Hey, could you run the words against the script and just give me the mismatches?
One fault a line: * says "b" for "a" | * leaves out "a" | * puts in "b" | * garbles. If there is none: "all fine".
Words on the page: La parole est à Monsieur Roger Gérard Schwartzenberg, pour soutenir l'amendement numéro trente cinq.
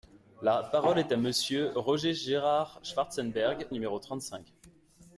* leaves out "pour soutenir l'amendement"